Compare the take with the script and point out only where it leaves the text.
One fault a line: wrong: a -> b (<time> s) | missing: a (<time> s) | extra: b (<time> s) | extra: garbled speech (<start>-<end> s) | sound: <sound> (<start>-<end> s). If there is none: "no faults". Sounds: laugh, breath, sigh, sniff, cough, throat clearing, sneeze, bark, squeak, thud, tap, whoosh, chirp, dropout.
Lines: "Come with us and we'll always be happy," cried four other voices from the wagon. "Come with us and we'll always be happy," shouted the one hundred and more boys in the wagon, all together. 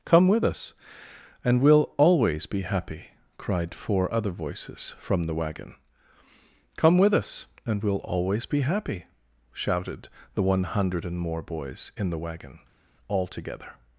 no faults